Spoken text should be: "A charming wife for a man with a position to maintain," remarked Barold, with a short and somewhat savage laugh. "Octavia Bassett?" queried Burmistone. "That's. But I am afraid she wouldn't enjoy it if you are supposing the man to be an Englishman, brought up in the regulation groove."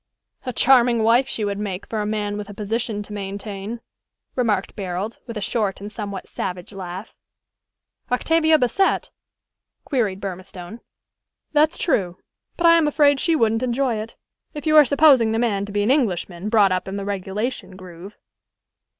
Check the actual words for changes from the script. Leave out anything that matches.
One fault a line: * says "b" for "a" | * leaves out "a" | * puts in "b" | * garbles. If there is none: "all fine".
* puts in "she would make"
* puts in "true"